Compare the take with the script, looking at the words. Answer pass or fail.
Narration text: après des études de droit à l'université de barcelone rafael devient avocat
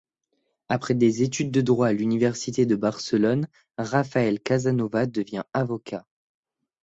fail